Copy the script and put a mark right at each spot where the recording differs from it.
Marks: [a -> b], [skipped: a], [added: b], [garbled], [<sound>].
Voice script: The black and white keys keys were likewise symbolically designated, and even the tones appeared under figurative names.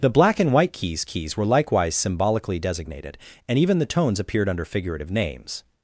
The black and white keys keys were likewise symbolically designated, and even the tones appeared under figurative names.